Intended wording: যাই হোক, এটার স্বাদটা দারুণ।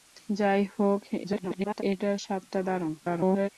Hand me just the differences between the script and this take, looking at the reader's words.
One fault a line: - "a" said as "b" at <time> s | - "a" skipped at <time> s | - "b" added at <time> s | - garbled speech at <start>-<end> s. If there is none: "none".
- garbled speech at 1.2-1.8 s
- garbled speech at 3.0-3.5 s